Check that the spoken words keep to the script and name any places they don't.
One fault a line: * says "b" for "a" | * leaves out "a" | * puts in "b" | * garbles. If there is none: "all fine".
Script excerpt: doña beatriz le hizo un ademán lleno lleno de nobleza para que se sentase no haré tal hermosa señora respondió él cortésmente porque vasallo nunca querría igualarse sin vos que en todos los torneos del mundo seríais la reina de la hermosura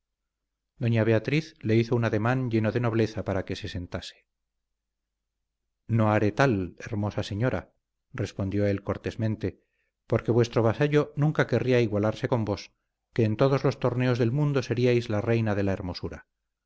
* leaves out "lleno"
* puts in "vuestro"
* says "con" for "sin"